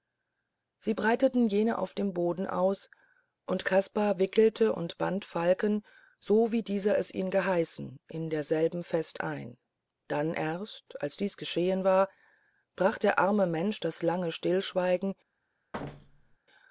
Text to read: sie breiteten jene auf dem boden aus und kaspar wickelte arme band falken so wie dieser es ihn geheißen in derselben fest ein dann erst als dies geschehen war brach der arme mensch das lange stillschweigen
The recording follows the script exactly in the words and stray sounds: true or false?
false